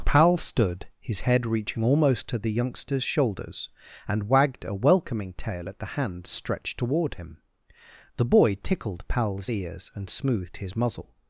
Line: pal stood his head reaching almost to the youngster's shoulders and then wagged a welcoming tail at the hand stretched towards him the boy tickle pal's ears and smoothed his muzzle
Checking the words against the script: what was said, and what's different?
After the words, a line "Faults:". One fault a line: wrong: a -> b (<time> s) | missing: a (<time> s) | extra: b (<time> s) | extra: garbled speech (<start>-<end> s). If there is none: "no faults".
pal stood his head reaching almost to the youngster's shoulders and wagged a welcoming tail at the hand stretched toward him the boy tickled pal's ears and smoothed his muzzle
Faults:
missing: then (4.3 s)
wrong: towards -> toward (6.8 s)
wrong: tickle -> tickled (8.6 s)